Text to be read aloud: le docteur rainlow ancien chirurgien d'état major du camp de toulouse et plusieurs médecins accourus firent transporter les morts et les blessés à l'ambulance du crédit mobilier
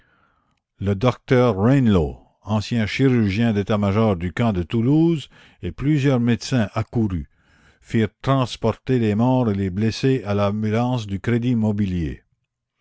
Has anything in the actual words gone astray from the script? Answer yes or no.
no